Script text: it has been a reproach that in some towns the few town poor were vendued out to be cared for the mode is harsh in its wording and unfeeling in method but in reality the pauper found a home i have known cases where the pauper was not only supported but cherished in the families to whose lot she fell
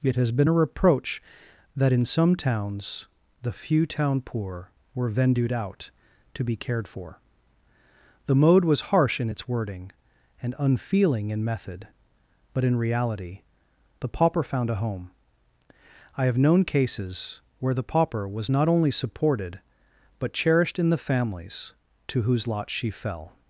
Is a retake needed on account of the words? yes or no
yes